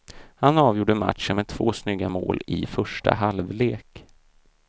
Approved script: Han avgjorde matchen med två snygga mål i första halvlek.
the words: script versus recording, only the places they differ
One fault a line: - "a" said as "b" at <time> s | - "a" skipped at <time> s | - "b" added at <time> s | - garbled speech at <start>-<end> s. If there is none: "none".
none